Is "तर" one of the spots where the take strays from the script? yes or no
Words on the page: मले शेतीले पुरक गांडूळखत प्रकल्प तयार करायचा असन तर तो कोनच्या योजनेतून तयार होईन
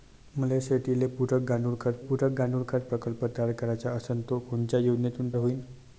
yes